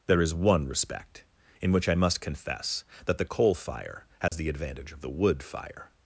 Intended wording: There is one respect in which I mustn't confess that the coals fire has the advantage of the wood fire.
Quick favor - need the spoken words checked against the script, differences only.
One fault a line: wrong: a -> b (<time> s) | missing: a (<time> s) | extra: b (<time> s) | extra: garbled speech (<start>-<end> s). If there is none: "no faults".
wrong: mustn't -> must (1.9 s)
wrong: coals -> coal (3.2 s)